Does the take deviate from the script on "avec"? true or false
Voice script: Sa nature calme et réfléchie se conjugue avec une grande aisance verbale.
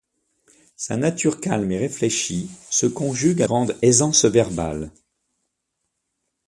true